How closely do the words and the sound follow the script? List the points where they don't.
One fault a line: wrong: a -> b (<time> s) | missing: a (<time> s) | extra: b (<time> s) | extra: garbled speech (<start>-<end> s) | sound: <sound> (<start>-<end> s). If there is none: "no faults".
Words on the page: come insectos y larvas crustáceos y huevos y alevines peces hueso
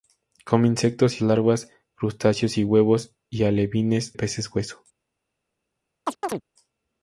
sound: chirp (6.1-6.4 s)